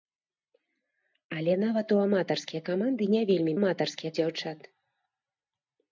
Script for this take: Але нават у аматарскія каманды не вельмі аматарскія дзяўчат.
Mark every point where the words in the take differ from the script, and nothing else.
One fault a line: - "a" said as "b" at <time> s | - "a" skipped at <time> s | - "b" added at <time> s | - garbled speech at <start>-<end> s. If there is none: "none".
none